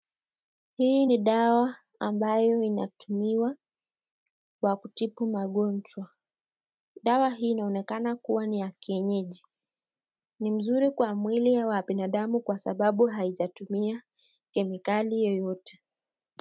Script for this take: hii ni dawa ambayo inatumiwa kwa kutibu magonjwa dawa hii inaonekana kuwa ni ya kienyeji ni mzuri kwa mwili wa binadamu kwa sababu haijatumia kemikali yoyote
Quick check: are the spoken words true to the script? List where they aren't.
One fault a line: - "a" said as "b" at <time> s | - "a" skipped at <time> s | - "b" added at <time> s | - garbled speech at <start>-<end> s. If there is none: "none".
none